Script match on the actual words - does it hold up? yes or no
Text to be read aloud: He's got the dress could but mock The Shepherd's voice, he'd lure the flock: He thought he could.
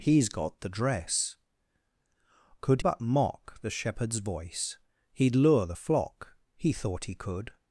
yes